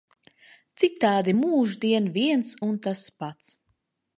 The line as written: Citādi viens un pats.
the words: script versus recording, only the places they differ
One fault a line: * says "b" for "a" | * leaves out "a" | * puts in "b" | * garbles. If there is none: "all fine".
* puts in "mūždien"
* puts in "tas"